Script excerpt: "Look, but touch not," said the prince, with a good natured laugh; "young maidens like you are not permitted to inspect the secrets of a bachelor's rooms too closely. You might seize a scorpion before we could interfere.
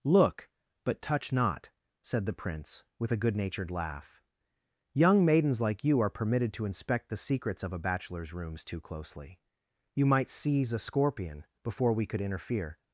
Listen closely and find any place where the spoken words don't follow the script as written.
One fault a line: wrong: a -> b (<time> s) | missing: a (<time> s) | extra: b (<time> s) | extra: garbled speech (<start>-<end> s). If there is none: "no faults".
missing: not (6.1 s)